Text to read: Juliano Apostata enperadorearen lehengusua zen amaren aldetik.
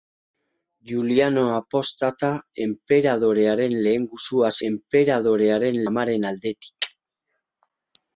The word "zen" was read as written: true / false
false